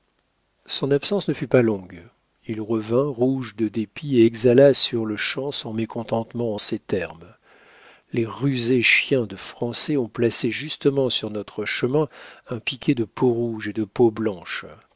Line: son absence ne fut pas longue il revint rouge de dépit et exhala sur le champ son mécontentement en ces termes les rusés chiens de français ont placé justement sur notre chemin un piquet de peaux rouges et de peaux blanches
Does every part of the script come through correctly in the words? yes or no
yes